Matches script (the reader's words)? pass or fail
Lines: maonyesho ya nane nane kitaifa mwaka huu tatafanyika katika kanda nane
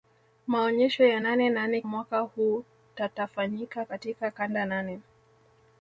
fail